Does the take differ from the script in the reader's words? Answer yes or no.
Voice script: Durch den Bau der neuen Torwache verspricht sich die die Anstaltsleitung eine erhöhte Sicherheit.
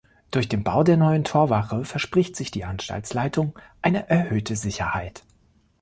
yes